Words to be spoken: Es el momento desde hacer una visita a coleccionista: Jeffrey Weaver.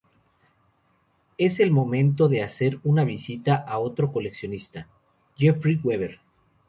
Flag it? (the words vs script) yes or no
yes